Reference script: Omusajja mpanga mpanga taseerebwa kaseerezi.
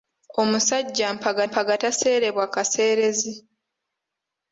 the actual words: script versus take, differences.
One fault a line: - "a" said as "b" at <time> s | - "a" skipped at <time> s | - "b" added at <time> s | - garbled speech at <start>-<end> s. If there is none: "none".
none